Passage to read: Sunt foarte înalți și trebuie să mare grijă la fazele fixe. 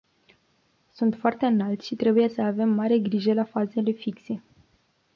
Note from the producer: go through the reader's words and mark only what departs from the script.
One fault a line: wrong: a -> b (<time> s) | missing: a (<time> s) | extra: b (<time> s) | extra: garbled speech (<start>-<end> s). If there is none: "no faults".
extra: avem (2.4 s)